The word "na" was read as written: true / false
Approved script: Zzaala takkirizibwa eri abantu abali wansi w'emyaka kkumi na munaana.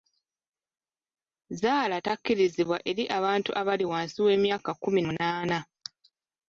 false